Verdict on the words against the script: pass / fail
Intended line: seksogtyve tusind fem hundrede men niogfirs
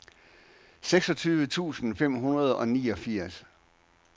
fail